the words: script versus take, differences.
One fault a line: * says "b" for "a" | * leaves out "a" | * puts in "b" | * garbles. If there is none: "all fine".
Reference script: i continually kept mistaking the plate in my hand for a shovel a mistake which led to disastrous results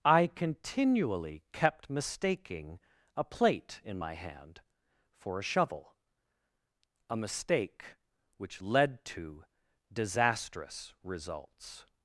* says "a" for "the"